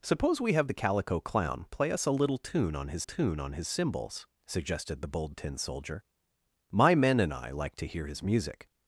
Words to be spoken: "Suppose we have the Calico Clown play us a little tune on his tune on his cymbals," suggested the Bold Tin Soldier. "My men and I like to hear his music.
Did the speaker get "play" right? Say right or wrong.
right